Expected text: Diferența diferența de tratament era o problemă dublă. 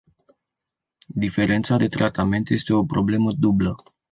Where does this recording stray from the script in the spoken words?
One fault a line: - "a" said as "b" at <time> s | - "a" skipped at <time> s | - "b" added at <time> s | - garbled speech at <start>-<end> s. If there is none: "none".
- "diferența" skipped at 1.8 s
- "era" said as "este" at 2.5 s